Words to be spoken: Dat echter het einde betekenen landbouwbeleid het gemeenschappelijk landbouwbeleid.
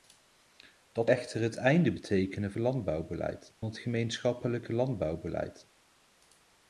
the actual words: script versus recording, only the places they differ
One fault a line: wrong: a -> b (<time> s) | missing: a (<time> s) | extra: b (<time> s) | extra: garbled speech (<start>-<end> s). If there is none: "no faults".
no faults